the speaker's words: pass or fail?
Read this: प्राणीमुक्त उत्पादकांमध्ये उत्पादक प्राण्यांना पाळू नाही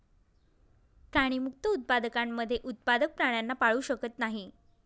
fail